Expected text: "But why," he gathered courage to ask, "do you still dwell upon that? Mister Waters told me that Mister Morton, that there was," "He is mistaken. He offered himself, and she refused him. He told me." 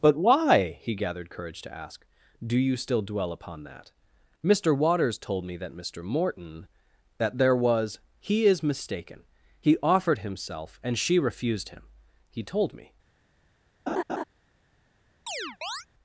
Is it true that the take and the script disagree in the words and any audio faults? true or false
true